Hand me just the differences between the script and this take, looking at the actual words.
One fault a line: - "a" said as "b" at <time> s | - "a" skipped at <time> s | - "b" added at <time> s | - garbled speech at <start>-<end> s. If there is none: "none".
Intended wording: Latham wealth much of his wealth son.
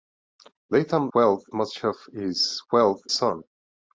none